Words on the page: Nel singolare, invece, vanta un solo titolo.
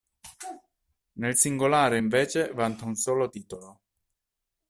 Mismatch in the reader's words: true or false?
false